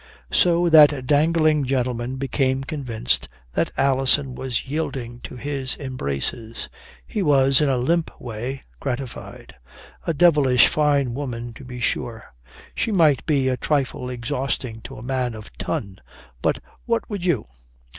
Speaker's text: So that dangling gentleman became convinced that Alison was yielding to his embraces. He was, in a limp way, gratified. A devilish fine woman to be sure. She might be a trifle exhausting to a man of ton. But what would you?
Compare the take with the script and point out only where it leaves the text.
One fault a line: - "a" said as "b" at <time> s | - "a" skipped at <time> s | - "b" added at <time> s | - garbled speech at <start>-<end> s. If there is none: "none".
none